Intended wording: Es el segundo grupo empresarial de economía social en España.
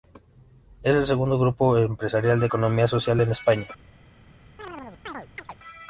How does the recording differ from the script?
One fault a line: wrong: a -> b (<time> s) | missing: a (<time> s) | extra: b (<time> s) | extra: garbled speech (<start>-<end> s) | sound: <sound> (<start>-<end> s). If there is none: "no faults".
sound: chirp (4.6-5.6 s)